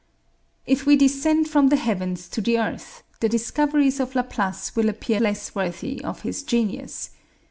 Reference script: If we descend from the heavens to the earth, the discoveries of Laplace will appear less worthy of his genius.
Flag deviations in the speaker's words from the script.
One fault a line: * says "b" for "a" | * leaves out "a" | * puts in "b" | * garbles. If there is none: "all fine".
all fine